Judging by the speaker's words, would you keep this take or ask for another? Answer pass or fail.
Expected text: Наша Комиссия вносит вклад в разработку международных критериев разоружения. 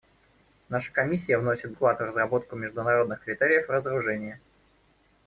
pass